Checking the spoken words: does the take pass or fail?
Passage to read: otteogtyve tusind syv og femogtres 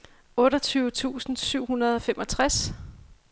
fail